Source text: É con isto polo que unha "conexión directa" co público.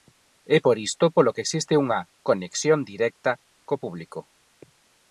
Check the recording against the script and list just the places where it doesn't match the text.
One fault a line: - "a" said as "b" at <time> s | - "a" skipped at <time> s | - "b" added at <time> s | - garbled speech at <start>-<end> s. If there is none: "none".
- "con" said as "por" at 0.6 s
- "existe" added at 1.4 s